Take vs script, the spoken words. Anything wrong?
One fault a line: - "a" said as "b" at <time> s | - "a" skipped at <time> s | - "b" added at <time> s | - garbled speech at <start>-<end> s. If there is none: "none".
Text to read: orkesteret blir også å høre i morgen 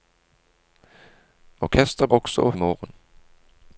- "blir" skipped at 2.1 s
- "høre" skipped at 2.5 s